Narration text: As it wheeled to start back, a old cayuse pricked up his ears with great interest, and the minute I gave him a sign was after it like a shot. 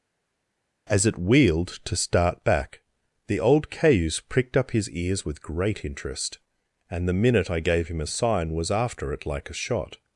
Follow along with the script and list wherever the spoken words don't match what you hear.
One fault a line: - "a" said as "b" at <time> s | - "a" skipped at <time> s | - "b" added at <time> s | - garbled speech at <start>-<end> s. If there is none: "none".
- "a" said as "the" at 3.3 s